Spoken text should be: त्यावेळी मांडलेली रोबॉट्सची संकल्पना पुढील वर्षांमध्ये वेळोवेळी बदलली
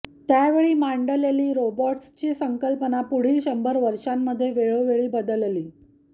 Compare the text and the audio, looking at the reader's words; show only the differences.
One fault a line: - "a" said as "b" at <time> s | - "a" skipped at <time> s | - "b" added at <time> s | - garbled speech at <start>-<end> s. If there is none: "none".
- "शंभर" added at 3.4 s